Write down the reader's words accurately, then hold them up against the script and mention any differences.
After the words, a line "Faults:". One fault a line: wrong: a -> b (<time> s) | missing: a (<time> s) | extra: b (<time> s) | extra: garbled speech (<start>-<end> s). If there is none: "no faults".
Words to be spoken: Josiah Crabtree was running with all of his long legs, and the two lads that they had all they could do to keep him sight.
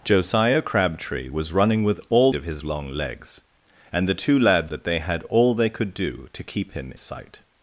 Josiah Crabtree was running with all of his long legs, and the two lads that they had all they could do to keep him sight.
Faults:
no faults